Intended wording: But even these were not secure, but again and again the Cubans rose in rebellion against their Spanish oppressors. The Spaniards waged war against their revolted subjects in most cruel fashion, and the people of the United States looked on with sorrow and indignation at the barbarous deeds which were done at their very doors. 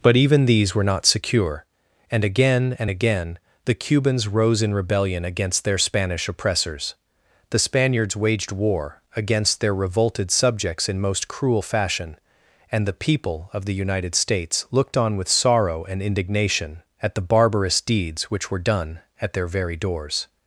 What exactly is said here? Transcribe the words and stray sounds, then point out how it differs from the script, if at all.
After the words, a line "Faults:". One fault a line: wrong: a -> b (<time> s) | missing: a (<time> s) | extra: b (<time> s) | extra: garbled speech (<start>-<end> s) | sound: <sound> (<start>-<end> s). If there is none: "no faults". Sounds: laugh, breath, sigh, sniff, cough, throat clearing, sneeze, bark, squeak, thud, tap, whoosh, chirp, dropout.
But even these were not secure, and again and again the Cubans rose in rebellion against their Spanish oppressors. The Spaniards waged war against their revolted subjects in most cruel fashion, and the people of the United States looked on with sorrow and indignation at the barbarous deeds which were done at their very doors.
Faults:
wrong: but -> and (2.1 s)